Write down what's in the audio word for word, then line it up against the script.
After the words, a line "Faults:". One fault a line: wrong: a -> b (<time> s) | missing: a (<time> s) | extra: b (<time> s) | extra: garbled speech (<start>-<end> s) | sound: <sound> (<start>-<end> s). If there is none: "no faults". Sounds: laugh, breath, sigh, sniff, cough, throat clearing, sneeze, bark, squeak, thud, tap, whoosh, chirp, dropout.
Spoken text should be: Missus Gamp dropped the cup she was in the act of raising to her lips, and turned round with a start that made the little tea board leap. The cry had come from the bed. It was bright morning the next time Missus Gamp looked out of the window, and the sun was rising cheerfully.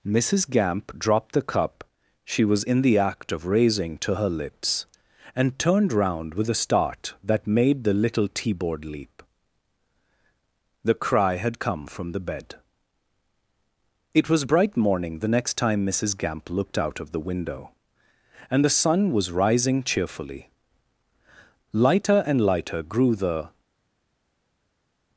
Missus Gamp dropped the cup she was in the act of raising to her lips, and turned round with a start that made the little tea board leap. The cry had come from the bed. It was bright morning the next time Missus Gamp looked out of the window, and the sun was rising cheerfully. Lighter and lighter grew the
Faults:
extra: Lighter and lighter grew the (21.7 s)